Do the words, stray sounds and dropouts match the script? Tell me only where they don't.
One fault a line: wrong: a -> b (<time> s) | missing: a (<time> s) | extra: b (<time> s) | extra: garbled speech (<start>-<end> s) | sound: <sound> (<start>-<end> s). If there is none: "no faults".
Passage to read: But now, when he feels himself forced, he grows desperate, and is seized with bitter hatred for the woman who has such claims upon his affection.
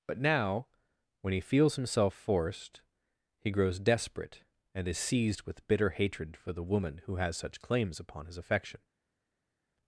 no faults